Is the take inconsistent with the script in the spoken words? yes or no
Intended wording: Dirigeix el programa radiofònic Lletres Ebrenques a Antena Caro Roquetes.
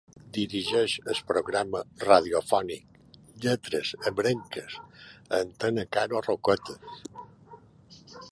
no